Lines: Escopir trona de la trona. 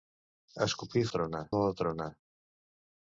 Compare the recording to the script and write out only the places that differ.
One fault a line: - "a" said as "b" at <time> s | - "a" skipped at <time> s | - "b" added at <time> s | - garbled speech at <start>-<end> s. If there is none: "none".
none